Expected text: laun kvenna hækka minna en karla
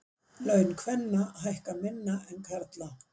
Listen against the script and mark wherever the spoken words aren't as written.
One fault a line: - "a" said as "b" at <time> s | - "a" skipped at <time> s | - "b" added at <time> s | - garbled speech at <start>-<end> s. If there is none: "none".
none